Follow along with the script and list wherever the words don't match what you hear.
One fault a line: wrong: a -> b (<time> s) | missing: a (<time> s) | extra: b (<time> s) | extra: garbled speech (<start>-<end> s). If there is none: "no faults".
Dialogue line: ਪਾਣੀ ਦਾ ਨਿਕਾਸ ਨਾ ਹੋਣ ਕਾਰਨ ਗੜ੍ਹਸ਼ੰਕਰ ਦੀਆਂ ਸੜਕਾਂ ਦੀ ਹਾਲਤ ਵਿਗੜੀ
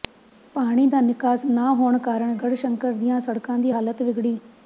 no faults